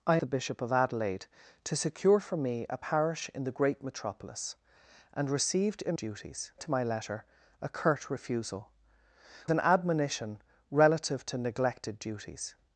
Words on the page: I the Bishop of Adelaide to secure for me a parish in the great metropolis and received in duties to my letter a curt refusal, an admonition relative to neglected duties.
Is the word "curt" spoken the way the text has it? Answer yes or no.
yes